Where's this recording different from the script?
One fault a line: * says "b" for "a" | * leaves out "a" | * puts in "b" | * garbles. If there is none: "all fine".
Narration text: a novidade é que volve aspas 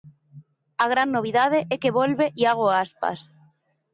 * puts in "gran"
* puts in "iago"